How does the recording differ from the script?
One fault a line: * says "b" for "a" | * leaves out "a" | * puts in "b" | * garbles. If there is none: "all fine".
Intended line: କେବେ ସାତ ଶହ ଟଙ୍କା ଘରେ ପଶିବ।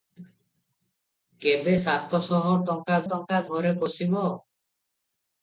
* puts in "ଟଙ୍କା"